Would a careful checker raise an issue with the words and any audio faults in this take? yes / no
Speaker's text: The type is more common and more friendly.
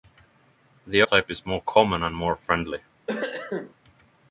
yes